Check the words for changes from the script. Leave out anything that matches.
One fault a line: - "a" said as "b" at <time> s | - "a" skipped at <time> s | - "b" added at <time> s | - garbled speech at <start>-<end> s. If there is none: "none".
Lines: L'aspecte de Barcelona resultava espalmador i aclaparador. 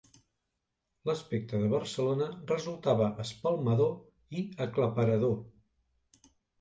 none